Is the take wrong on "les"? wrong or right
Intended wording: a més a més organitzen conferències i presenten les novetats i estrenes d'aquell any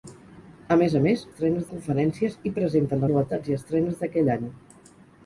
wrong